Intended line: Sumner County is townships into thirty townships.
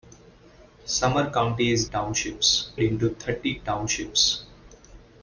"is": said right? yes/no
yes